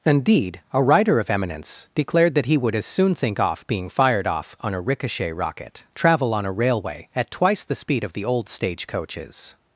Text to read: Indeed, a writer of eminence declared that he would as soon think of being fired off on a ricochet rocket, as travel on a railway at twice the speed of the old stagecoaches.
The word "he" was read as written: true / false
true